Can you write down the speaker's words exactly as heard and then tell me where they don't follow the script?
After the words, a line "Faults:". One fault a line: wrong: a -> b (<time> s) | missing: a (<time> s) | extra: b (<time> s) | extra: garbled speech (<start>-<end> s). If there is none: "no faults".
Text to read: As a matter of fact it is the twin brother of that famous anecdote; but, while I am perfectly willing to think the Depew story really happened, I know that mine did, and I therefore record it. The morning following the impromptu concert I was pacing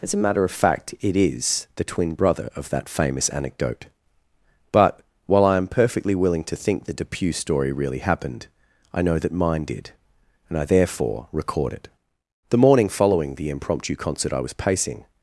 As a matter of fact it is the twin brother of that famous anecdote; but, while I am perfectly willing to think the Depew story really happened, I know that mine did, and I therefore record it. The morning following the impromptu concert I was pacing
Faults:
no faults